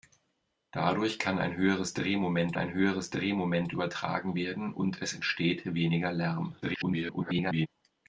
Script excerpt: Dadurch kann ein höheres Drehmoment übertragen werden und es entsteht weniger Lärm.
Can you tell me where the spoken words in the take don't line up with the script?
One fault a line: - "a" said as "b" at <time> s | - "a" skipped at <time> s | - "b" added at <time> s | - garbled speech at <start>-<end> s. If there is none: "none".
- "ein höheres Drehmoment" added at 2.5 s
- garbled speech at 6.6-7.7 s